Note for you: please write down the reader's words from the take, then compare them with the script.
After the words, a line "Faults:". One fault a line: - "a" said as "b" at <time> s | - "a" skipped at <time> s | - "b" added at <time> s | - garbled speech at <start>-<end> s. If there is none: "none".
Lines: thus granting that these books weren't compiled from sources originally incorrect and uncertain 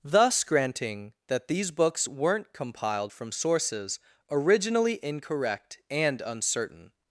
thus granting that these books weren't compiled from sources originally incorrect and uncertain
Faults:
none